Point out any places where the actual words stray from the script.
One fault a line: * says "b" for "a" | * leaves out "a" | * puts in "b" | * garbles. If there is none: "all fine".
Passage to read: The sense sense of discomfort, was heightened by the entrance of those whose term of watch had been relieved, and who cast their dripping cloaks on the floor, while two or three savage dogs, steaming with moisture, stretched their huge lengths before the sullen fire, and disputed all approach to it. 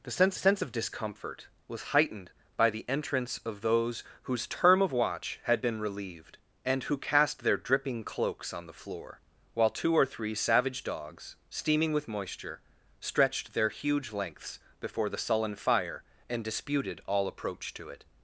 all fine